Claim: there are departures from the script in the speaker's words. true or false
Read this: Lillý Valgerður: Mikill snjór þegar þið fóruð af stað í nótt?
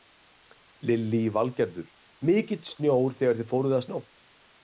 true